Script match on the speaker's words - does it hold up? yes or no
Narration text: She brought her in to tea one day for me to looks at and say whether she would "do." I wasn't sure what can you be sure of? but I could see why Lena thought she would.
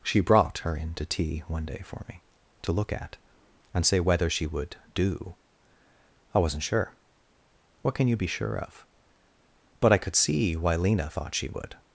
no